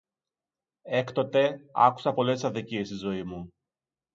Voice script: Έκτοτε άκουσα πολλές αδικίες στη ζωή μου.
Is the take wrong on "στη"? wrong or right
right